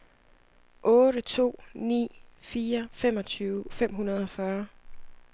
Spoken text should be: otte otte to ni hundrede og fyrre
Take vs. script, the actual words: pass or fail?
fail